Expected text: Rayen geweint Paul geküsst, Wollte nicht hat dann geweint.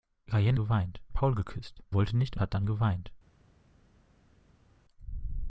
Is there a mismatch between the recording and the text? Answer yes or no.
no